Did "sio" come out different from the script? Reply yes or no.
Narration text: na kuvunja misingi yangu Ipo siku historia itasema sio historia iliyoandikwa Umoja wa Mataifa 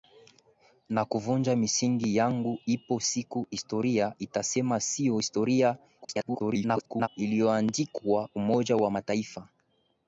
no